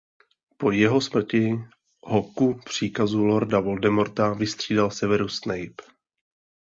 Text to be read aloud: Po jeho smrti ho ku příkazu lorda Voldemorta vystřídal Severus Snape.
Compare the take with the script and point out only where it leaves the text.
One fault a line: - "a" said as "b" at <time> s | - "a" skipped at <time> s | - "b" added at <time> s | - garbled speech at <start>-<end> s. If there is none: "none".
none